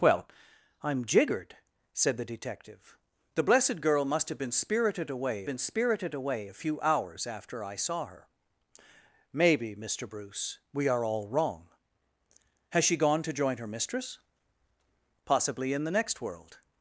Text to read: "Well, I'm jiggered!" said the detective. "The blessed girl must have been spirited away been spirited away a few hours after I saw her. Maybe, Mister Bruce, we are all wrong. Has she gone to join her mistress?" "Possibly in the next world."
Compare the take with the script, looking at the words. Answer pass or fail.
pass